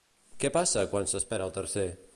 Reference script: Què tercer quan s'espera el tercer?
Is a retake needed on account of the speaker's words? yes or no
yes